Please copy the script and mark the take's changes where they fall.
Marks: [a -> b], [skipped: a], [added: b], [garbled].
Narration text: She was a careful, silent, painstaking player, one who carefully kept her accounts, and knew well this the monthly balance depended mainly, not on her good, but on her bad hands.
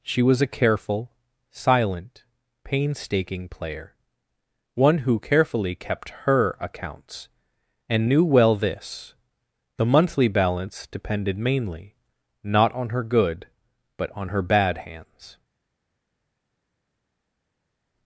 She was a careful, silent, painstaking player, one who carefully kept her accounts, and knew well this the monthly balance depended mainly, not on her good, but on her bad hands.